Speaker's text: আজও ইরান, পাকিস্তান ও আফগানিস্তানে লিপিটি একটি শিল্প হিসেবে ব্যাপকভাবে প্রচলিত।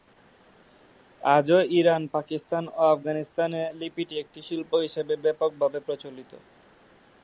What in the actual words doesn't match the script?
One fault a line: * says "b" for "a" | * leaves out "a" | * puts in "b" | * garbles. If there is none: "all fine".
all fine